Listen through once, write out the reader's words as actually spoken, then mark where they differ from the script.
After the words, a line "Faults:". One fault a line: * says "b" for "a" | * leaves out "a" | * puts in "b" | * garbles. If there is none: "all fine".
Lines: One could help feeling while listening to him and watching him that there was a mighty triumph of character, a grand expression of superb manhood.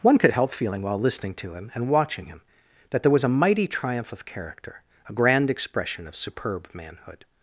One could help feeling while listening to him and watching him that there was a mighty triumph of character, a grand expression of superb manhood.
Faults:
all fine